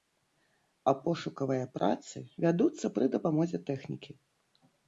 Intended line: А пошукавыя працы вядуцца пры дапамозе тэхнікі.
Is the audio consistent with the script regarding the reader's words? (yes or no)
yes